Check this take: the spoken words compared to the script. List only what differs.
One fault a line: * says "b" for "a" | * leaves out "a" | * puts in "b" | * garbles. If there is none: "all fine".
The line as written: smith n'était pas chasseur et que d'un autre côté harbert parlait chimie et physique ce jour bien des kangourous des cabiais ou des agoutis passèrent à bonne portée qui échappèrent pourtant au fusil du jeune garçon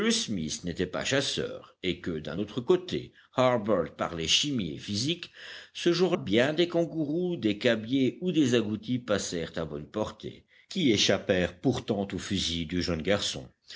all fine